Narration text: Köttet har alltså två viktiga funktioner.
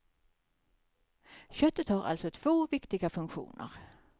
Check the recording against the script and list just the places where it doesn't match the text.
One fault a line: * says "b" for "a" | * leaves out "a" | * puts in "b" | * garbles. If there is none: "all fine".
all fine